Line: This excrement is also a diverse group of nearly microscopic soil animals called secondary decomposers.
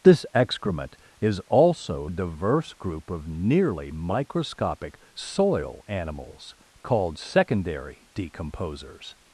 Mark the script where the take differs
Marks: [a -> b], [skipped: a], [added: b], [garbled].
This excrement is also a diverse group of nearly microscopic soil animals called secondary decomposers.